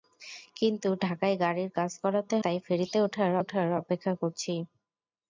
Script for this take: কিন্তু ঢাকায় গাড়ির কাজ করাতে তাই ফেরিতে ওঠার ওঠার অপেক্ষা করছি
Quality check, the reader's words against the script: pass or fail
pass